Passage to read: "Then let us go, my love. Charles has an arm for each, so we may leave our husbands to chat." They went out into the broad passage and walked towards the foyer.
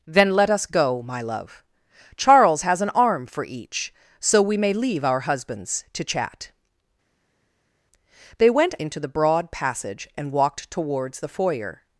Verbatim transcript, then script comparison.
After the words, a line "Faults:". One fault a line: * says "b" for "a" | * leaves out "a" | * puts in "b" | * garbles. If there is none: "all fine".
"Then let us go, my love. Charles has an arm for each, so we may leave our husbands to chat." They went into the broad passage and walked towards the foyer.
Faults:
* leaves out "out"